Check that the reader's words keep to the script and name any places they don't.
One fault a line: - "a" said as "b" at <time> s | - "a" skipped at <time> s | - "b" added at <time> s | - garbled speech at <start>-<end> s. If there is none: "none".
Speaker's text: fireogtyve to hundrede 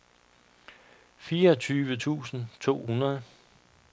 - "tusind" added at 2.0 s